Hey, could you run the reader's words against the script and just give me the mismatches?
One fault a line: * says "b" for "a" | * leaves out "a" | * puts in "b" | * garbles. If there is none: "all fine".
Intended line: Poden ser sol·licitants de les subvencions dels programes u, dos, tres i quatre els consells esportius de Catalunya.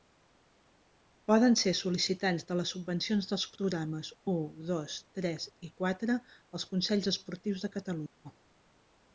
all fine